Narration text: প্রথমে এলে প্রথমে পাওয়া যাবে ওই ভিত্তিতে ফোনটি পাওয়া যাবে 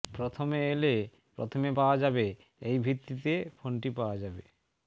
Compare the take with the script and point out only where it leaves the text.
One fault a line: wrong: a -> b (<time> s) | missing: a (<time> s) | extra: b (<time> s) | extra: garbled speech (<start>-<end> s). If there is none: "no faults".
wrong: ওই -> এই (2.6 s)